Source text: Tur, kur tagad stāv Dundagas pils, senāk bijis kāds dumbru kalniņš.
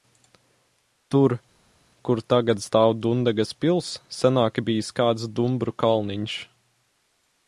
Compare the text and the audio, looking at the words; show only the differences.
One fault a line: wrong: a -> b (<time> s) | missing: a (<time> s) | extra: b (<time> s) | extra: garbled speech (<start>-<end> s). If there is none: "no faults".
no faults